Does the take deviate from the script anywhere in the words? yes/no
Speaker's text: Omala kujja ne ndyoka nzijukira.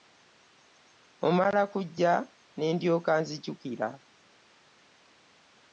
no